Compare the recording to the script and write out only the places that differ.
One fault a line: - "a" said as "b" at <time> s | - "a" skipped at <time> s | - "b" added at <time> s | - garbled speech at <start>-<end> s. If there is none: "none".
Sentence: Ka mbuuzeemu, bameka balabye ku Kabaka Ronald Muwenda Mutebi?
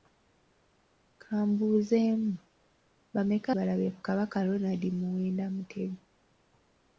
none